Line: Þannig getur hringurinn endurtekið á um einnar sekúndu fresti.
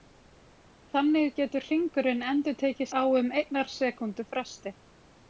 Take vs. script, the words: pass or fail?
pass